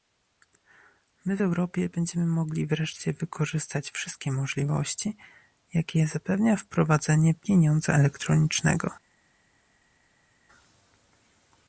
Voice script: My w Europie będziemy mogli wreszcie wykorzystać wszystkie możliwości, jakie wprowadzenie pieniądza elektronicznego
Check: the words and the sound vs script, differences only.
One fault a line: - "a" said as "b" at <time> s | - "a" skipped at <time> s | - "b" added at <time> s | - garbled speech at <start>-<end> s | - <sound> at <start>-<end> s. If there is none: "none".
- "zapewnia" added at 6.1 s